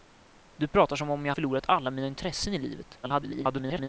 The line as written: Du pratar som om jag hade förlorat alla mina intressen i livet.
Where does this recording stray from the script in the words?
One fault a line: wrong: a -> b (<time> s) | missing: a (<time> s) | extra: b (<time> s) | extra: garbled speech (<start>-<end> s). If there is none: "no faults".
missing: hade (1.3 s)
extra: garbled speech (3.0-3.9 s)